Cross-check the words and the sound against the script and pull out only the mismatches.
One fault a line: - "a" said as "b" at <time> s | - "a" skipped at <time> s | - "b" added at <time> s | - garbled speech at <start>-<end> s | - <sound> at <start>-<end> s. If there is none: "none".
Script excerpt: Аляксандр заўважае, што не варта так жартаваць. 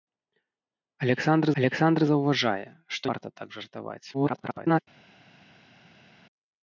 - "аляксандр" added at 1.6 s
- "не" skipped at 3.1 s
- garbled speech at 4.1-4.8 s